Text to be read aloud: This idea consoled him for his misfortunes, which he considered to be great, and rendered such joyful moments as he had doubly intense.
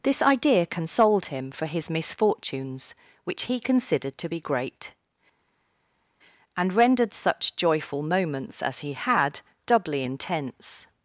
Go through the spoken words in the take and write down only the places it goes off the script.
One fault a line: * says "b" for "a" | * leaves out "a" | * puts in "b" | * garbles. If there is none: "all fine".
all fine